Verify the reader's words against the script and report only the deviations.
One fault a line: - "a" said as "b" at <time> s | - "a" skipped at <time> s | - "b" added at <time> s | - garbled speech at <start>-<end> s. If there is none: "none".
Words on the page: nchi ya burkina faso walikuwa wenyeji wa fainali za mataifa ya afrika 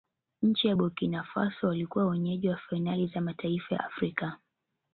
- "ya" skipped at 3.8 s